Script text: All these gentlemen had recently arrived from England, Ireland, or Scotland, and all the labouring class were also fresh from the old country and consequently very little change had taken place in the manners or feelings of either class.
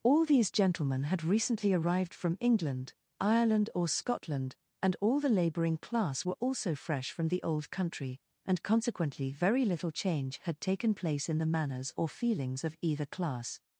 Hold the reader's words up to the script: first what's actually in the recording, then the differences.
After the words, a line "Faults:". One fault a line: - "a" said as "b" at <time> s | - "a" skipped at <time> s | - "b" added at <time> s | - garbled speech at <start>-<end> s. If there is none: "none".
All these gentlemen had recently arrived from England, Ireland, or Scotland, and all the labouring class were also fresh from the old country and consequently very little change had taken place in the manners or feelings of either class.
Faults:
none